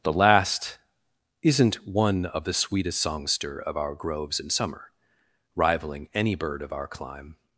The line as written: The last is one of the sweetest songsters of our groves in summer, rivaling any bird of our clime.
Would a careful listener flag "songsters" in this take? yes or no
yes